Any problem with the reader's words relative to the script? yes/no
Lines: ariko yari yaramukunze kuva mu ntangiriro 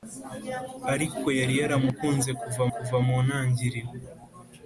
yes